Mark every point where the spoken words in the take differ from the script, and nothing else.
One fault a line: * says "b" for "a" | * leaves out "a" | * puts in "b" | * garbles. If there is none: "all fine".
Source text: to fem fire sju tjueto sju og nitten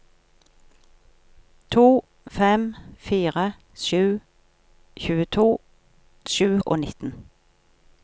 all fine